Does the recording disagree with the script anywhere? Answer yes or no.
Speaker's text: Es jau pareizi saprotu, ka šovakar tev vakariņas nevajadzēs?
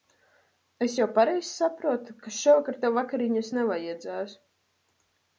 no